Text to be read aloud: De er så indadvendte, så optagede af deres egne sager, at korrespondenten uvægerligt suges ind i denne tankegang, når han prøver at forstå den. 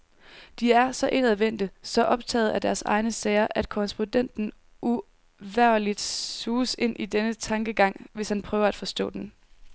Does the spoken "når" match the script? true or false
false